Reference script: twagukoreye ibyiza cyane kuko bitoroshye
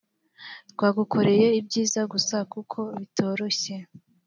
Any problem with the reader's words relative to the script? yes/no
yes